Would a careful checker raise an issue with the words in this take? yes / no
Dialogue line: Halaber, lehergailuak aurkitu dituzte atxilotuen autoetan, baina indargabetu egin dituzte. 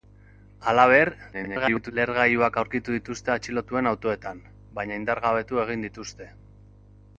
yes